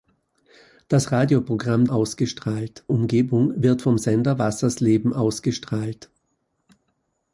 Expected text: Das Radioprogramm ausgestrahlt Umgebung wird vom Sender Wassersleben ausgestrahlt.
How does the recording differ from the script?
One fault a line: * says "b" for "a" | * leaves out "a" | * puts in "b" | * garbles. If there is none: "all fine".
all fine